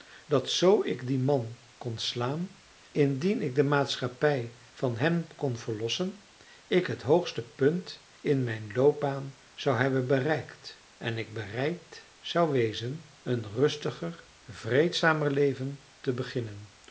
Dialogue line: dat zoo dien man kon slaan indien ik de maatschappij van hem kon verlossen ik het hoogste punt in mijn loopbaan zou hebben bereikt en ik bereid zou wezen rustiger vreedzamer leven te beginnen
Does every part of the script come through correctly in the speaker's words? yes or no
no